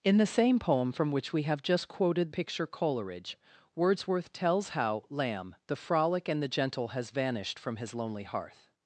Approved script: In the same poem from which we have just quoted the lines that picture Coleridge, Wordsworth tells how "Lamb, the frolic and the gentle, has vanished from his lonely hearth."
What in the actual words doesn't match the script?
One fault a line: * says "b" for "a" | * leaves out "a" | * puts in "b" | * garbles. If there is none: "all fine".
* leaves out "the lines that"